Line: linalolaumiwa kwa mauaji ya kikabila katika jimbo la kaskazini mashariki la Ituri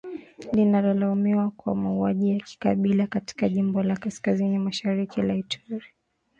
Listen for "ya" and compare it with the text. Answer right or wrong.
right